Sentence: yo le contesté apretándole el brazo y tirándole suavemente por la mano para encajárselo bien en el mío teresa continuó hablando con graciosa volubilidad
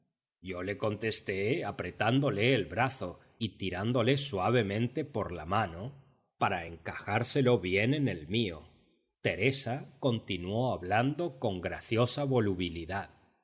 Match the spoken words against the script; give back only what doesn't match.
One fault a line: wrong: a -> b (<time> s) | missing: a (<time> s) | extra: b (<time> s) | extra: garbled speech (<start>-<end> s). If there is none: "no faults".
no faults